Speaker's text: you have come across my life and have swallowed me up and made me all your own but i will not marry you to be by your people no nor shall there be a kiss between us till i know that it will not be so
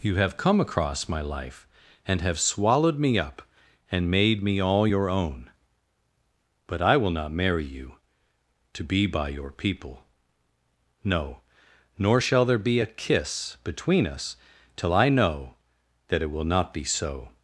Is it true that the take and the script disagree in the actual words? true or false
false